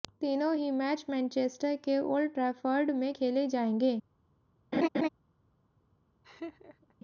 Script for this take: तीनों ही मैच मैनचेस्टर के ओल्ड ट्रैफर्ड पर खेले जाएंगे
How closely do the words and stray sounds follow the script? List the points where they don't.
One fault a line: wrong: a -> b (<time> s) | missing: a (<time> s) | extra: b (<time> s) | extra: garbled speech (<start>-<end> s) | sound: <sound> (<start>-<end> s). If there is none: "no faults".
wrong: पर -> में (2.9 s)
sound: laugh (4.7-5.1 s)
sound: laugh (6.2-6.9 s)